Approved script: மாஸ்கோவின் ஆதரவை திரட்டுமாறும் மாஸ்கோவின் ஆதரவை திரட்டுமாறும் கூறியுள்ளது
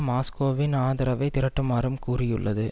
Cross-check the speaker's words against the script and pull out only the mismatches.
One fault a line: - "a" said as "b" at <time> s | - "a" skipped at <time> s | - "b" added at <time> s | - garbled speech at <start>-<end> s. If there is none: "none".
- "மாஸ்கோவின் ஆதரவை திரட்டுமாறும்" skipped at 2.0 s